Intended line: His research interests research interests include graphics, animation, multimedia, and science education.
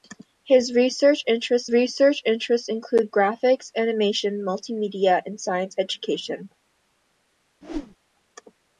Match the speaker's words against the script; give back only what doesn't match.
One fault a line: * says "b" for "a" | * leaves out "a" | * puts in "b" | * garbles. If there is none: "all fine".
all fine